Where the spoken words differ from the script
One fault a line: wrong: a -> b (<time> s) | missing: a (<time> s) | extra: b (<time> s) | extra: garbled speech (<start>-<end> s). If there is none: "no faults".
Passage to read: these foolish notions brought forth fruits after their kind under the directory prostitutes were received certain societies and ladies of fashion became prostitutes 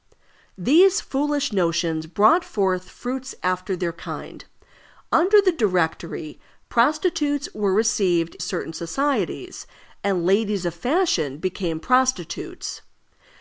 no faults